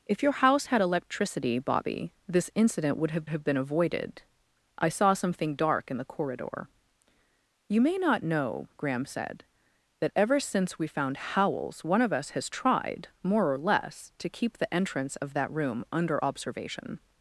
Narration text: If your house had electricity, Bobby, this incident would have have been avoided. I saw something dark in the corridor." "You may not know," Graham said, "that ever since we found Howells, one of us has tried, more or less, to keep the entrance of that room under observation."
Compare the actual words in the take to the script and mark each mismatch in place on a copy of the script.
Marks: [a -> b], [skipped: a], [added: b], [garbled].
If your house had electricity, Bobby, this incident would have have been avoided. I saw something dark in the corridor." "You may not know," Graham said, "that ever since we found Howells, one of us has tried, more or less, to keep the entrance of that room under observation."